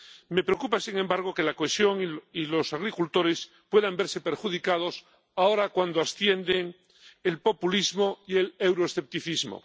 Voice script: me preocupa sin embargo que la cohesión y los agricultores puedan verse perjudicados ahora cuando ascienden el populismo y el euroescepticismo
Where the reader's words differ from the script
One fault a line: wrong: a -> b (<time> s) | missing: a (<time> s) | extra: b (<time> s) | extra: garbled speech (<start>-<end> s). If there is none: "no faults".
no faults